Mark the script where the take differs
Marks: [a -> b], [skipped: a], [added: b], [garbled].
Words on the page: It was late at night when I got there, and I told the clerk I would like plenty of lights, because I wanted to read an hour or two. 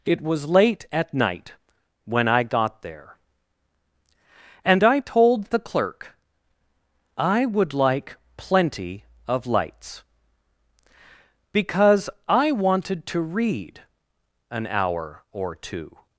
It was late at night when I got there, and I told the clerk I would like plenty of lights, because I wanted to read an hour or two.